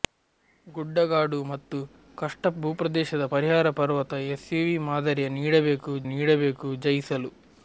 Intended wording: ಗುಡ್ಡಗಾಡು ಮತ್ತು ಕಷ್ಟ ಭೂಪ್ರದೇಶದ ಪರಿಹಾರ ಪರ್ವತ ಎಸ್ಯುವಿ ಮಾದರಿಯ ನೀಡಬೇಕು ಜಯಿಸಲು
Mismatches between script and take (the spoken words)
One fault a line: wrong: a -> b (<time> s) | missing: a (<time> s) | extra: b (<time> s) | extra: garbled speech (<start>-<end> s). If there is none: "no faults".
extra: ನೀಡಬೇಕು (6.1 s)